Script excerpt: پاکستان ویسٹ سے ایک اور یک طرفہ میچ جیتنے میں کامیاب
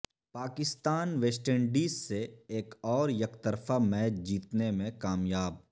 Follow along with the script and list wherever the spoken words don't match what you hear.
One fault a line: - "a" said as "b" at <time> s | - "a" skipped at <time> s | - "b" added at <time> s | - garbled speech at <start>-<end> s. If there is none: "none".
- "انڈیز" added at 1.5 s